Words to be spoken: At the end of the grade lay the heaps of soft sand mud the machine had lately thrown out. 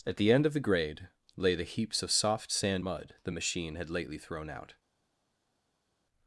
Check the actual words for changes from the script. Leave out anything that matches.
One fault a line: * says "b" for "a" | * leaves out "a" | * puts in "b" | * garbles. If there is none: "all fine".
all fine